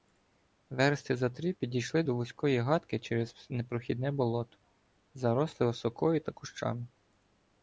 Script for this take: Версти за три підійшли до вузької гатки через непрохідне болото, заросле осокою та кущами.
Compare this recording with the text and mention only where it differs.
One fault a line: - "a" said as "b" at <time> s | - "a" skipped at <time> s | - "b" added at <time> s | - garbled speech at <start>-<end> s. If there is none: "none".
none